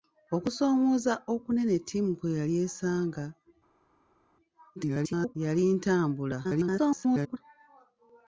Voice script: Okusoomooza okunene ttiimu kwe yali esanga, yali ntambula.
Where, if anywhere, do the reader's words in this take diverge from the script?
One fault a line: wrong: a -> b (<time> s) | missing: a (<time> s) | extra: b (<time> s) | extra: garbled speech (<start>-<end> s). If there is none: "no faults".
extra: garbled speech (4.8-5.4 s)
extra: garbled speech (6.4-7.4 s)